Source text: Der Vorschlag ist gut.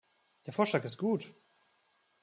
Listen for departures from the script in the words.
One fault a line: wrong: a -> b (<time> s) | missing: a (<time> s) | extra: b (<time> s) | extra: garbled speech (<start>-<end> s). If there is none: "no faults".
no faults